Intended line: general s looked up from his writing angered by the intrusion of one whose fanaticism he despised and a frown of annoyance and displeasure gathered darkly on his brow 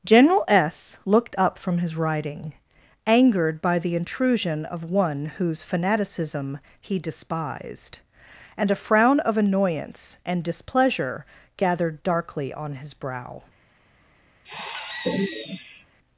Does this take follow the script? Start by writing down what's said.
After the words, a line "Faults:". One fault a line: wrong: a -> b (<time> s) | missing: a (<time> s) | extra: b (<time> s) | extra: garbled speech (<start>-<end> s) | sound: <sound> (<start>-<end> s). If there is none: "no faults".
general s looked up from his writing angered by the intrusion of one whose fanaticism he despised and a frown of annoyance and displeasure gathered darkly on his brow
Faults:
sound: sigh (14.4-15.8 s)